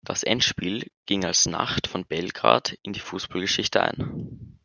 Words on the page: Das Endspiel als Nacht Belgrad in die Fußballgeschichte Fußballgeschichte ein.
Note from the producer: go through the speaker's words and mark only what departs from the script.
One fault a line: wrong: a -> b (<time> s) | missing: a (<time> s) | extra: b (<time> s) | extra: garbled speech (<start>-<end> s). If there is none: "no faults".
extra: ging (1.1 s)
extra: von (1.9 s)
missing: Fußballgeschichte (3.8 s)